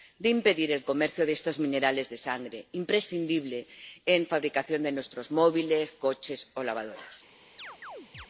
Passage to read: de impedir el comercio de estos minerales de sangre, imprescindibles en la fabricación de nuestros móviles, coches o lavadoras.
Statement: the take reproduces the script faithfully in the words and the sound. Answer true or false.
false